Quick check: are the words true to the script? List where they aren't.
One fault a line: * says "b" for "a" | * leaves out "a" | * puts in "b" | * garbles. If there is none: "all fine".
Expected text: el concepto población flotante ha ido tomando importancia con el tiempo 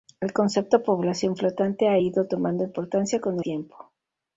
* leaves out "el"